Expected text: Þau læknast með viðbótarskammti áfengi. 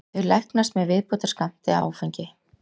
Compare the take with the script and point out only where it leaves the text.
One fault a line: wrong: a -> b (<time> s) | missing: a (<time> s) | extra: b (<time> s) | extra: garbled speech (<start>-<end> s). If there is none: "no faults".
no faults